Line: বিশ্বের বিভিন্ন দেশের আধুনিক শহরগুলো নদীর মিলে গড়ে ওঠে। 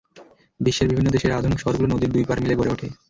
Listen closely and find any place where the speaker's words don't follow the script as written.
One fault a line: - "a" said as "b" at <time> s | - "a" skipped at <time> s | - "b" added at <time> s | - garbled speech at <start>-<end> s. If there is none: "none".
- "দুই পাড়" added at 2.1 s